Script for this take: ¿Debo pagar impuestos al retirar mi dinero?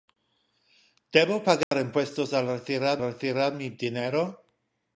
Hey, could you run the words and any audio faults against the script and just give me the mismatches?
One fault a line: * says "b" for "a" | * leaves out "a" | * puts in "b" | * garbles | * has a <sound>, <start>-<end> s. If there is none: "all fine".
* has a dropout, 1.6-1.7 s
* puts in "retirar"